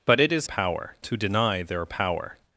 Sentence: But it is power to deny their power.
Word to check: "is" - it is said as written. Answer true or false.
true